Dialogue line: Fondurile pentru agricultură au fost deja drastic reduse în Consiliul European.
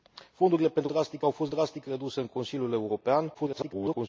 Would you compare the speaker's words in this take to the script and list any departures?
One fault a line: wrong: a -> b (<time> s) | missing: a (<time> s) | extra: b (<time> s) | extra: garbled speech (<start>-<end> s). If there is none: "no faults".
wrong: agricultură -> drastic (0.8 s)
missing: deja (1.5 s)
extra: garbled speech (3.3-4.1 s)